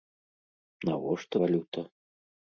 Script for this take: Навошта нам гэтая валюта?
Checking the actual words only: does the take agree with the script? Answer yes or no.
no